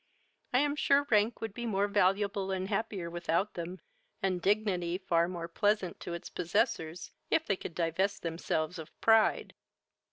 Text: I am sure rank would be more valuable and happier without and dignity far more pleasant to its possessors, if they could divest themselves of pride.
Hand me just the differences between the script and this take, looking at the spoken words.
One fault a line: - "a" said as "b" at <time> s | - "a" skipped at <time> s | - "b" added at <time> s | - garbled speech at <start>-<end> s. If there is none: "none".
- "them" added at 3.5 s